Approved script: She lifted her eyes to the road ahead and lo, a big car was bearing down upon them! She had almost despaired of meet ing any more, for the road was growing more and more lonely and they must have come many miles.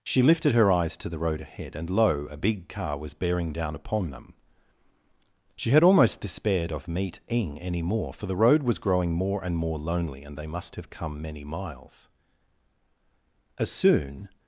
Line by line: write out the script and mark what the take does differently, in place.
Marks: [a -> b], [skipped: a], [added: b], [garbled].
She lifted her eyes to the road ahead and lo, a big car was bearing down upon them! She had almost despaired of meet ing any more, for the road was growing more and more lonely and they must have come many miles. [added: As soon]